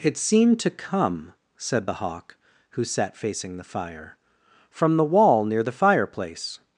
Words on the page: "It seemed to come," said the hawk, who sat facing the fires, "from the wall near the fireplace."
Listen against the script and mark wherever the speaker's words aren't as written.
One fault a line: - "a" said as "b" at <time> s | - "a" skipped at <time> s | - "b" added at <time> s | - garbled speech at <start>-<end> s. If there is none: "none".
- "fires" said as "fire" at 3.6 s